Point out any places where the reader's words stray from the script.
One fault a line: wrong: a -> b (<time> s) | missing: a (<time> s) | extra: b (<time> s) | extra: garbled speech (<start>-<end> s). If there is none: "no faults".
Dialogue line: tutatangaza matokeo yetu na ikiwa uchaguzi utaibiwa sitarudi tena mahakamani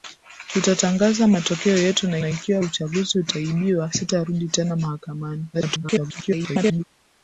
extra: na (2.2 s)
extra: garbled speech (5.5-6.8 s)